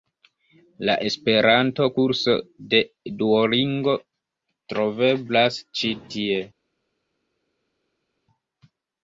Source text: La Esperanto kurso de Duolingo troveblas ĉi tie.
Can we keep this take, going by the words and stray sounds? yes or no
yes